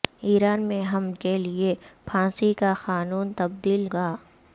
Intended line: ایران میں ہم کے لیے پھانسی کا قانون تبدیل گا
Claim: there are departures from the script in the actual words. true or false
false